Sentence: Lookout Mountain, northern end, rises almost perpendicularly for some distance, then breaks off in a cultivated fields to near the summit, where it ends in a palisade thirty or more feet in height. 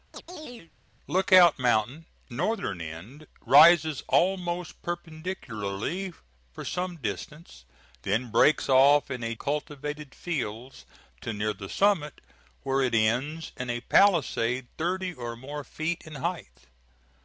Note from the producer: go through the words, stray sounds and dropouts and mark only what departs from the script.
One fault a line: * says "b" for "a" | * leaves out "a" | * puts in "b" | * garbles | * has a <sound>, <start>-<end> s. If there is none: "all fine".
* has a chirp, 0.1-0.7 s